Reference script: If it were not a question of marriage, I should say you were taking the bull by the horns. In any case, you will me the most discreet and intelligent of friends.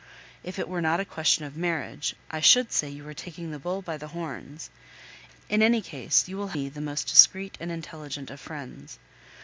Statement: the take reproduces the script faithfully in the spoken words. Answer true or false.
true